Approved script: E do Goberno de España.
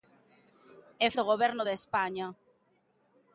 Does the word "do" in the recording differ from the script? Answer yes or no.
no